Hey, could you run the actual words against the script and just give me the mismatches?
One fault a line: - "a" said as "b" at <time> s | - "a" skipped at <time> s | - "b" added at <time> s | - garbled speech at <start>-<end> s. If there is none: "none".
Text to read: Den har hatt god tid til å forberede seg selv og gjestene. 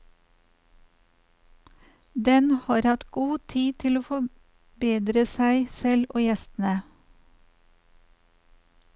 none